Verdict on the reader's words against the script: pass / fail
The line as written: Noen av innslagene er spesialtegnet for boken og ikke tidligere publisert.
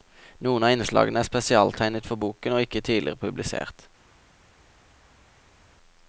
pass